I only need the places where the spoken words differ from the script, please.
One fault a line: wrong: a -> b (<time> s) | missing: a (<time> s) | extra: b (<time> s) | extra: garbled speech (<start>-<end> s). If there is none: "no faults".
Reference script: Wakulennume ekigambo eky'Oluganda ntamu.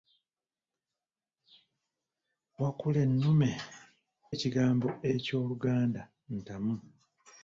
no faults